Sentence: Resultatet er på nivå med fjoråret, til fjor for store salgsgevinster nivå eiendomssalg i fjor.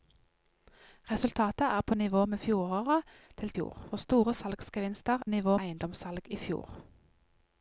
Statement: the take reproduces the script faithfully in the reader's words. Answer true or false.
true